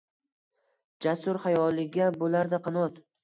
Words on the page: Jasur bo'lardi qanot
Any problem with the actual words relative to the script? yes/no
yes